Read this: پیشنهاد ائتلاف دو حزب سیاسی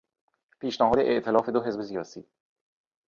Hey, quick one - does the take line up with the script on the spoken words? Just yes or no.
yes